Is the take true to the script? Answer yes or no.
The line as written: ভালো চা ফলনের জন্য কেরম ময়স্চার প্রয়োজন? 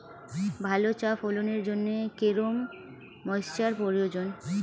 yes